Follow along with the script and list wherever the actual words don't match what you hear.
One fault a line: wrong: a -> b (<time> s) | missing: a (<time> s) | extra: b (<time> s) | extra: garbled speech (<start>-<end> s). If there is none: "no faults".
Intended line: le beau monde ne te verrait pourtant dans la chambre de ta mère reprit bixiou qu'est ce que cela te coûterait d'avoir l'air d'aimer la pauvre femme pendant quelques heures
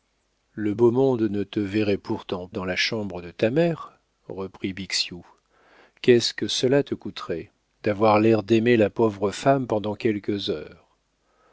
no faults